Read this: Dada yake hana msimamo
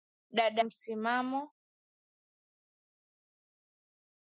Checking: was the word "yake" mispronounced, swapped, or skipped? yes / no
yes